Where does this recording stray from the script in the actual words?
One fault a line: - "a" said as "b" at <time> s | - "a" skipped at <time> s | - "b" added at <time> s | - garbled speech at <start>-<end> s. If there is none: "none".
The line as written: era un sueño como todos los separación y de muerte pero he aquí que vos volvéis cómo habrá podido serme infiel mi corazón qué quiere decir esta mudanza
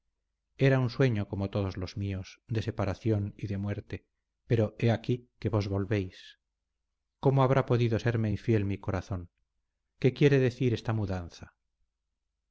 - "míos de" added at 1.9 s